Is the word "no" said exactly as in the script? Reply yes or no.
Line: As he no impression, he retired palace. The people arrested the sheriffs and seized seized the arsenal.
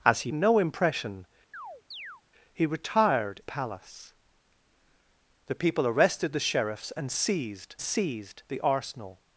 yes